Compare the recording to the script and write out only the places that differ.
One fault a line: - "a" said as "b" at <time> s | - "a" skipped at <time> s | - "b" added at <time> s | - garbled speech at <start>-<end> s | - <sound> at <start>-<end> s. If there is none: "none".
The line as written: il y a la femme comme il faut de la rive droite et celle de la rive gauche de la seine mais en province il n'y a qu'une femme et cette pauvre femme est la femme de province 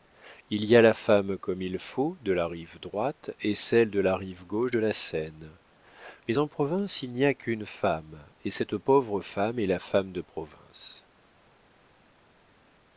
none